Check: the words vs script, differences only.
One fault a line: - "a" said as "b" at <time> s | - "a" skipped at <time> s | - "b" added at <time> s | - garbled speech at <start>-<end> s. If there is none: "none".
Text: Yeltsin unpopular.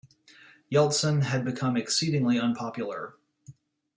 - "had become exceedingly" added at 1.2 s